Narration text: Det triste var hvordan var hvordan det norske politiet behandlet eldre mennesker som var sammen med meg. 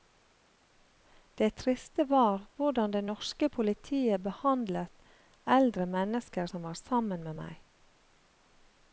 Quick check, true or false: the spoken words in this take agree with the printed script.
false